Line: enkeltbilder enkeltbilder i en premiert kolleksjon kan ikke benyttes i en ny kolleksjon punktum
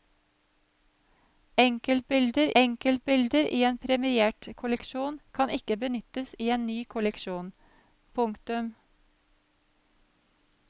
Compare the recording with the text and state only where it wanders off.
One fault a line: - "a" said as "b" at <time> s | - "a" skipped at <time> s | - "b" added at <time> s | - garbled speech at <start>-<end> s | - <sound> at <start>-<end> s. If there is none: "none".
none